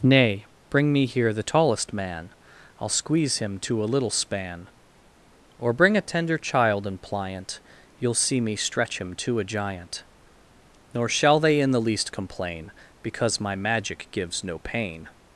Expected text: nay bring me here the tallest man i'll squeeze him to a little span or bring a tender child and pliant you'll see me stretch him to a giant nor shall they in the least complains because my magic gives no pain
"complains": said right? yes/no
no